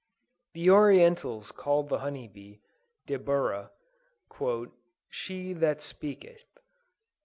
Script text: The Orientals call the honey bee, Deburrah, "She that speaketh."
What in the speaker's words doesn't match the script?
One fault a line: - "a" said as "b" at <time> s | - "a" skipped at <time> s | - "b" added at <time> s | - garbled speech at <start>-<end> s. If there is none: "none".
none